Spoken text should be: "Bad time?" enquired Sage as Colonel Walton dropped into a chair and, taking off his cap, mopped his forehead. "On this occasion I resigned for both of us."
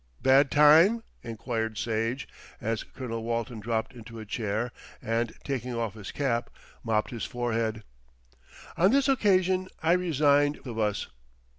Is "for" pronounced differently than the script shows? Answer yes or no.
yes